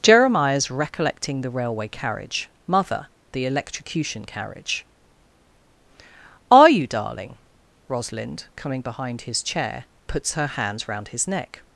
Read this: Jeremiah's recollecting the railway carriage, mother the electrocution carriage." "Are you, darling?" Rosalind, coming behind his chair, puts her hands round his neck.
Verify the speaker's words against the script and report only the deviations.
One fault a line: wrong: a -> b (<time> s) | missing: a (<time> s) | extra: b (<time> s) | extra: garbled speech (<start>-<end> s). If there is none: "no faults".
no faults